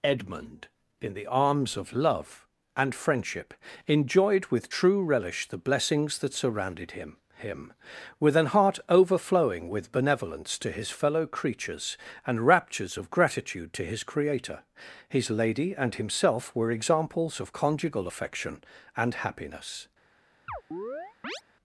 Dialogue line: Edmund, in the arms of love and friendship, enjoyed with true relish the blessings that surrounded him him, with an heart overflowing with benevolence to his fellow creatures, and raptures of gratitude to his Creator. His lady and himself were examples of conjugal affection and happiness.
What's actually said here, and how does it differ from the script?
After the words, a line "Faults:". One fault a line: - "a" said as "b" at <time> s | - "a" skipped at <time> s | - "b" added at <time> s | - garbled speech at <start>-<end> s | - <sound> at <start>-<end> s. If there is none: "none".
Edmund, in the arms of love and friendship, enjoyed with true relish the blessings that surrounded him him, with an heart overflowing with benevolence to his fellow creatures, and raptures of gratitude to his Creator. His lady and himself were examples of conjugal affection and happiness.
Faults:
- chirp at 20.5-21.4 s